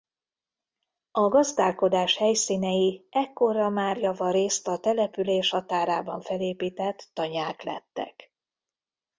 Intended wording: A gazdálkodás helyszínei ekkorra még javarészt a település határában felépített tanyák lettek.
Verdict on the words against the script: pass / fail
fail